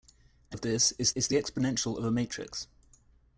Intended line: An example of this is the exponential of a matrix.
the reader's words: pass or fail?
fail